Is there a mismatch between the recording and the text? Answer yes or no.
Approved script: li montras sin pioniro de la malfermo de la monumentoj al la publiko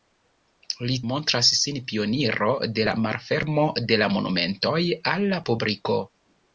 no